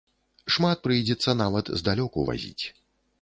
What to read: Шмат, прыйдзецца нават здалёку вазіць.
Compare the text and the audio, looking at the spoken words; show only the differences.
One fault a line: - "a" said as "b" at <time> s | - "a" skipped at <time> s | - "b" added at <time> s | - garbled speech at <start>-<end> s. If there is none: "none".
none